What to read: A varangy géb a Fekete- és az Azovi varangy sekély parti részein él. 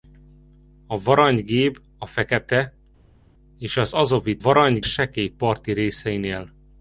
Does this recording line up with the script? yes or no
yes